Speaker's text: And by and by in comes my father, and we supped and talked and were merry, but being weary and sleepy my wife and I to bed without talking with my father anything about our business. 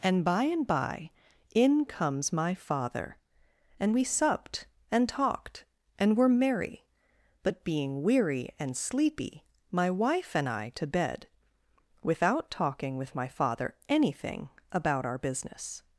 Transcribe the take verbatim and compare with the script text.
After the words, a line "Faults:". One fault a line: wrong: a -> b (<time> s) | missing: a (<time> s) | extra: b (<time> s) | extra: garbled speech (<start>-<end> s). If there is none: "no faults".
And by and by in comes my father, and we supped and talked and were merry, but being weary and sleepy my wife and I to bed without talking with my father anything about our business.
Faults:
no faults